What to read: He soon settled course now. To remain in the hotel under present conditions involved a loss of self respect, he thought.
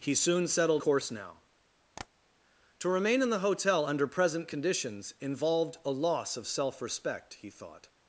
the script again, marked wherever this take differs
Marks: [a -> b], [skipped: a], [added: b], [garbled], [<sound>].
He soon settled course now. [tap] To remain in the hotel under present conditions involved a loss of self respect, he thought.